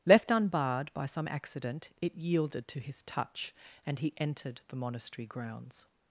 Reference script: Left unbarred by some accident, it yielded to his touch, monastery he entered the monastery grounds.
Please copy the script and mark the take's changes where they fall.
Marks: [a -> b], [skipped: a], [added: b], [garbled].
Left unbarred by some accident, it yielded to his touch, [monastery -> and] he entered the monastery grounds.